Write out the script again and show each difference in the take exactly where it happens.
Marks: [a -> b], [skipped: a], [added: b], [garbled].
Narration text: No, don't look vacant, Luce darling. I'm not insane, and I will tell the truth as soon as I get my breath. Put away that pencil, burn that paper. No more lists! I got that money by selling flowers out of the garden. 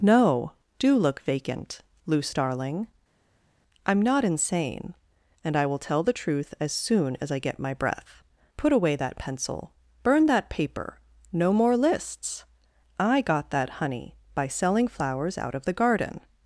No, [don't -> do] look vacant, Luce darling. I'm not insane, and I will tell the truth as soon as I get my breath. Put away that pencil, burn that paper. No more lists! I got that [money -> honey] by selling flowers out of the garden.